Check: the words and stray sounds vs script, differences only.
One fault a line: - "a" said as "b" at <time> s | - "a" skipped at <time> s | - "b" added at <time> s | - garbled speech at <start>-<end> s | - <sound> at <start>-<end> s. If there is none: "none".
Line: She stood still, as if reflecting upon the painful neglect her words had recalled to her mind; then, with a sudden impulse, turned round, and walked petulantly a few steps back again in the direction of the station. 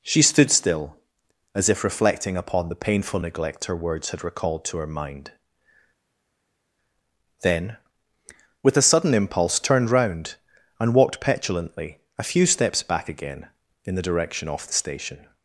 - "of" said as "off" at 14.5 s